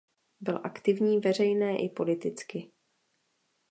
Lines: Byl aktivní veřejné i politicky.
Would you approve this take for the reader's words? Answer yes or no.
yes